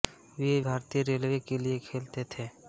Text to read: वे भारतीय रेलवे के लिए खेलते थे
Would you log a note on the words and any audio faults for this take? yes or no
no